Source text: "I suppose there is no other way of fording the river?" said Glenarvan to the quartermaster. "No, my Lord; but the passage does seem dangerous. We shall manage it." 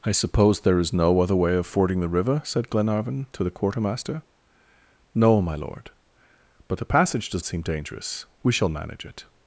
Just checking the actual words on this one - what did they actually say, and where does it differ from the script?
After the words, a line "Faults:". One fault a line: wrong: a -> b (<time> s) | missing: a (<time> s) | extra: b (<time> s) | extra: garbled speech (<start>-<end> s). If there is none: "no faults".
"I suppose there is no other way of fording the river?" said Glenarvan to the quartermaster. "No, my Lord; but the passage does seem dangerous. We shall manage it."
Faults:
no faults